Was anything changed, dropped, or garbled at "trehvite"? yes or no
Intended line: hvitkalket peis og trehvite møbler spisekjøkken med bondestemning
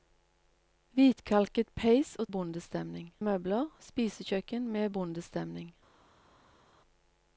yes